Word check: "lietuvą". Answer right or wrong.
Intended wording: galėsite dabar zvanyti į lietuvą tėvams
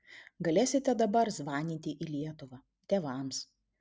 right